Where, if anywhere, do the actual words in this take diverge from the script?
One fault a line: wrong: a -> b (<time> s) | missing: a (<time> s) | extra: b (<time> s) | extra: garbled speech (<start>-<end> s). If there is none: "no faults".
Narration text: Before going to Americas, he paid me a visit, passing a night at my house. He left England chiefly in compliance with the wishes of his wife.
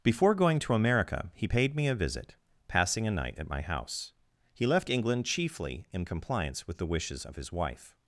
wrong: Americas -> America (0.7 s)